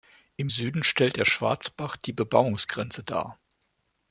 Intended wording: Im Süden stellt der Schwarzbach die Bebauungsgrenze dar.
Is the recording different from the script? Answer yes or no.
no